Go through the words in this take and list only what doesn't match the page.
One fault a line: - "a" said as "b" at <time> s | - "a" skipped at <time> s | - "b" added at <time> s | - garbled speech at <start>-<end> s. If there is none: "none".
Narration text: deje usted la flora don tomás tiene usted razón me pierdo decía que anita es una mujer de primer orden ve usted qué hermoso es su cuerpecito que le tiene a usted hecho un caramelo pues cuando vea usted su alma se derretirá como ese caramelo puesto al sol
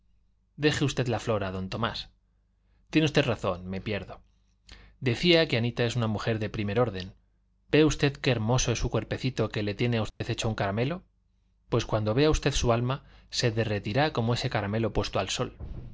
none